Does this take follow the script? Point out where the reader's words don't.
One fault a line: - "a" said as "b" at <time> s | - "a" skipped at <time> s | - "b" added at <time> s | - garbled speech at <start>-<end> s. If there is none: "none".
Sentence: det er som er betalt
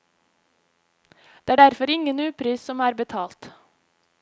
- "derfor ingen upris" added at 1.5 s